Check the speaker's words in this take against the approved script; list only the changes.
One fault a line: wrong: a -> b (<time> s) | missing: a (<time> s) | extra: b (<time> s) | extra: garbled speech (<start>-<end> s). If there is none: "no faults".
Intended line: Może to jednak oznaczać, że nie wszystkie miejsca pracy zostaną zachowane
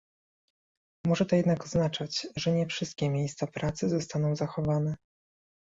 no faults